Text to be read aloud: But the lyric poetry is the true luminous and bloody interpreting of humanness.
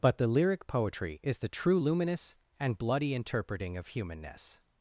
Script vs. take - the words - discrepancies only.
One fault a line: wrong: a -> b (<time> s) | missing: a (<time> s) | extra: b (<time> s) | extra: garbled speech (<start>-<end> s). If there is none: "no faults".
no faults